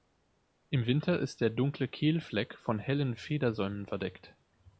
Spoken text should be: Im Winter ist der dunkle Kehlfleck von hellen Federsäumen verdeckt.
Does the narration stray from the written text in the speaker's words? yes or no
no